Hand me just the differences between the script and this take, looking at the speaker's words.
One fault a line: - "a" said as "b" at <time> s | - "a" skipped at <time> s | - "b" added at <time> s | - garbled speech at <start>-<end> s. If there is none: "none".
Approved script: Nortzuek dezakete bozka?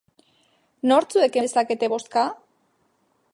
none